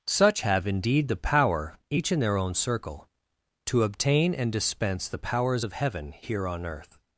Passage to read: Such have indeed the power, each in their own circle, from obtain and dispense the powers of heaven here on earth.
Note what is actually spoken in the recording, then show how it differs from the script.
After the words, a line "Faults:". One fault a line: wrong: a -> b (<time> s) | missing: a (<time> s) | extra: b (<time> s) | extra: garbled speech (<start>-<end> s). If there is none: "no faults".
Such have indeed the power, each in their own circle, to obtain and dispense the powers of heaven here on earth.
Faults:
wrong: from -> to (3.7 s)